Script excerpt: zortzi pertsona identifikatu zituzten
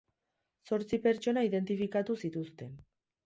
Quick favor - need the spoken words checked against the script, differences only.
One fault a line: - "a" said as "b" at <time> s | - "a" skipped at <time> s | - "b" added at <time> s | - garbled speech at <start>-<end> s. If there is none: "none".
none